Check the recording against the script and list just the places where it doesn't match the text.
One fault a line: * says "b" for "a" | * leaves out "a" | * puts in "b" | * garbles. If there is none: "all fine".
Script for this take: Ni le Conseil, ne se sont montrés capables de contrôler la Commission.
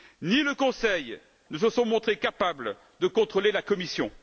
all fine